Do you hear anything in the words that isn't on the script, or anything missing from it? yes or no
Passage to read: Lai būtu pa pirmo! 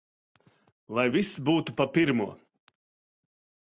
yes